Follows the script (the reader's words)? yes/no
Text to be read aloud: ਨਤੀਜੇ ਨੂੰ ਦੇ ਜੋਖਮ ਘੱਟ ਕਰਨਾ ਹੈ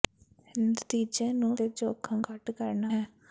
yes